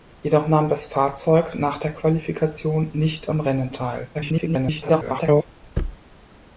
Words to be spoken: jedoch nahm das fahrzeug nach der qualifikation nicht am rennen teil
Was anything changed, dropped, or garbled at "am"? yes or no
no